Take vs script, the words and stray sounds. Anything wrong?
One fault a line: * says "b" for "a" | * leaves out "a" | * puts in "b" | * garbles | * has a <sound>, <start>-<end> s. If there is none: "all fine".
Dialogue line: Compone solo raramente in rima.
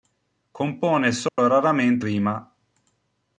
* has a dropout, 1.3-1.4 s
* leaves out "in"